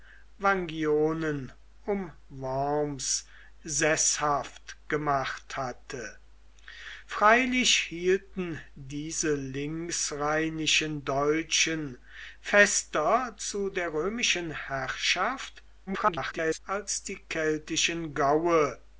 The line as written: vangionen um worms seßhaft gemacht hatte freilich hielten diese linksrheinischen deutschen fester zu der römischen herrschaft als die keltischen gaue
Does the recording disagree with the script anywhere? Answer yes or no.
yes